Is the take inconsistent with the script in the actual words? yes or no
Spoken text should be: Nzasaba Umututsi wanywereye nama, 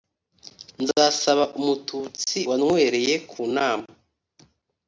yes